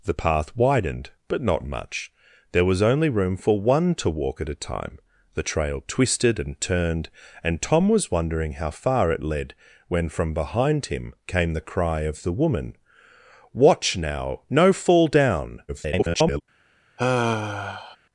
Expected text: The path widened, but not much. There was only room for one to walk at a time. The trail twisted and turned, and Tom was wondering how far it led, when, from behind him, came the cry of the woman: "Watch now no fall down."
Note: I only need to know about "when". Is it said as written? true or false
true